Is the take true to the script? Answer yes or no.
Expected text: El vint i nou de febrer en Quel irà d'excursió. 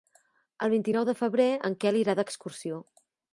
yes